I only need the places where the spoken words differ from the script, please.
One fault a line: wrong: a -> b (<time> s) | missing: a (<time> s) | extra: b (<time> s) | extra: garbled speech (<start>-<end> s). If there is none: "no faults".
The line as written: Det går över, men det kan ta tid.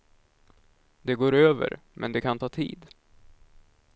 no faults